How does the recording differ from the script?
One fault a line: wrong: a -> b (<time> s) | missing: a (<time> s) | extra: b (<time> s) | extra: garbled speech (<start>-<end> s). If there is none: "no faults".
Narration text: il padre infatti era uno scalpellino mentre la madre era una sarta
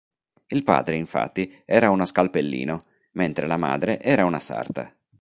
no faults